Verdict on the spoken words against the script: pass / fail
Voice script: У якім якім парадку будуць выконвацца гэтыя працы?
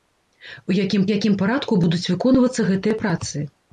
pass